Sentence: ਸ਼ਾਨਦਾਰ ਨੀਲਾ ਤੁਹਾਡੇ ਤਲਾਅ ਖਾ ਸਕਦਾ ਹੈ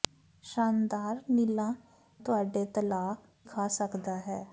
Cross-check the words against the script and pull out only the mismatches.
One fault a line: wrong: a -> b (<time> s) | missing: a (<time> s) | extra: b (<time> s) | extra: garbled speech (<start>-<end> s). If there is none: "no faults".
no faults